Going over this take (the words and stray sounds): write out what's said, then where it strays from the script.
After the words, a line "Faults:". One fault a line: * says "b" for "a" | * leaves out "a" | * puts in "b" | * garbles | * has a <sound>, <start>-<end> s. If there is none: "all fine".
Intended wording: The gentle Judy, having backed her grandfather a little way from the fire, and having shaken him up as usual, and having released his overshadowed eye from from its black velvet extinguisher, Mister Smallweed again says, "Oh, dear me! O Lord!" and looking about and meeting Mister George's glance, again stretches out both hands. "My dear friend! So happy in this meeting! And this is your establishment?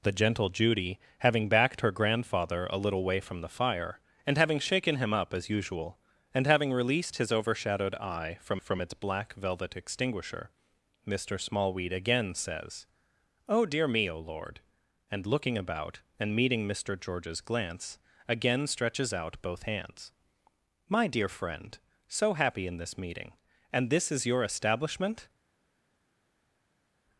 The gentle Judy, having backed her grandfather a little way from the fire, and having shaken him up as usual, and having released his overshadowed eye from from its black velvet extinguisher, Mister Smallweed again says, "Oh, dear me! O Lord!" and looking about and meeting Mister George's glance, again stretches out both hands. "My dear friend! So happy in this meeting! And this is your establishment?
Faults:
all fine